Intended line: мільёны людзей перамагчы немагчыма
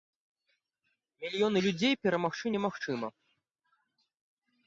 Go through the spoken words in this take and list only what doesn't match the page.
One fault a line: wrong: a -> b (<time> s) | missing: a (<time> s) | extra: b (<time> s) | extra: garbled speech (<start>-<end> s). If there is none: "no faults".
no faults